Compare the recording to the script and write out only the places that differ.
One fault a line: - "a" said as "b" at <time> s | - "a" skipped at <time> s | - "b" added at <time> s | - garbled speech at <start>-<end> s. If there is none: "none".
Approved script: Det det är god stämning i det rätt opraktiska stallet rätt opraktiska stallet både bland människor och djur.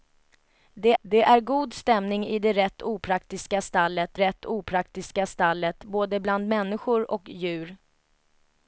none